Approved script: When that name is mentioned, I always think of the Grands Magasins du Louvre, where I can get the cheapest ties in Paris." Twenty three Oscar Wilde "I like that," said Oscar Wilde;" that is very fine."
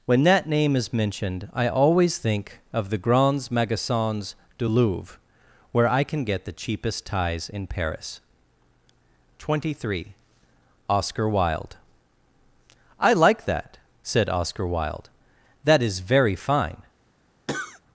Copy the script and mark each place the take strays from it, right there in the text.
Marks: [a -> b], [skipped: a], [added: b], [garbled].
When that name is mentioned, I always think of the Grands Magasins du Louvre, where I can get the cheapest ties in Paris." Twenty three Oscar Wilde "I like that," said Oscar Wilde;" that is very fine."